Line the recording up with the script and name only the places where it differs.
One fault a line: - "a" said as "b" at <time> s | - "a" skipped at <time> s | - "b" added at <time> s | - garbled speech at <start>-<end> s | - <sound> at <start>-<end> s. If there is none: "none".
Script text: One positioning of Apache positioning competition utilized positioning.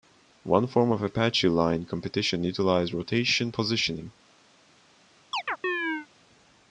- "positioning" said as "form" at 0.7 s
- "positioning" said as "line" at 1.5 s
- "rotation" added at 2.9 s
- chirp at 5.3-6.1 s